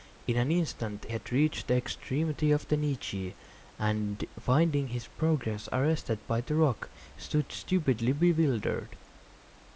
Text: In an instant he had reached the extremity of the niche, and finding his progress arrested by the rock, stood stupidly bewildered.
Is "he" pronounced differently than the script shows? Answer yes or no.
yes